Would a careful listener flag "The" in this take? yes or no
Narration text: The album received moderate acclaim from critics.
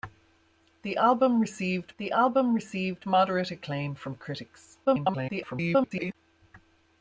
no